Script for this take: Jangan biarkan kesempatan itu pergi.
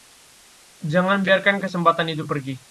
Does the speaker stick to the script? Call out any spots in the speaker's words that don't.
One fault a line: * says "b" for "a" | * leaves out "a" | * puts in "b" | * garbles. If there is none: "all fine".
all fine